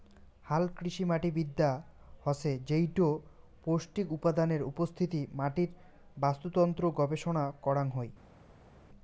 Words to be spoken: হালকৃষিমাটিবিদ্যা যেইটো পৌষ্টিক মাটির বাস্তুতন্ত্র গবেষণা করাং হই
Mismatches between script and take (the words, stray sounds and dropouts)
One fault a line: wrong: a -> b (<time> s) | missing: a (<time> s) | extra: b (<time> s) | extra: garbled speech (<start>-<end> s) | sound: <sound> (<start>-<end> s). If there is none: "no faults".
extra: হসে (2.2 s)
extra: উপাদানের উপস্থিতি (4.1 s)